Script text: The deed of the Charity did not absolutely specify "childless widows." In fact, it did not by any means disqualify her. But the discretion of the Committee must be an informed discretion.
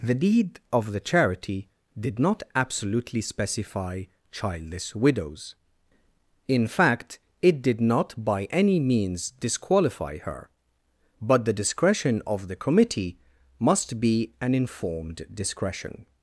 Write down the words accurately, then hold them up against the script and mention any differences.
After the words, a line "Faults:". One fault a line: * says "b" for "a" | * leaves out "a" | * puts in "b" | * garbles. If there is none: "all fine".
The deed of the Charity did not absolutely specify "childless widows." In fact, it did not by any means disqualify her. But the discretion of the Committee must be an informed discretion.
Faults:
all fine